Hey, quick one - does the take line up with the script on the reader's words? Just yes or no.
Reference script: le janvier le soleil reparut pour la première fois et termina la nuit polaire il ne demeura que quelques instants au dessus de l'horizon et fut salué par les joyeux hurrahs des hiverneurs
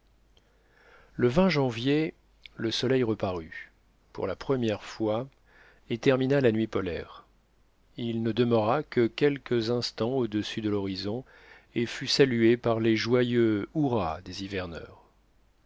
yes